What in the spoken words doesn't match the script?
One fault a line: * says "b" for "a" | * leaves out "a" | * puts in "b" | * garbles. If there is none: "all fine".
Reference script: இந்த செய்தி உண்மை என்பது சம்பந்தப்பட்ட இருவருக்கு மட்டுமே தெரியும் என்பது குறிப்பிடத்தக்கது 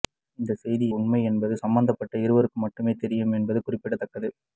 all fine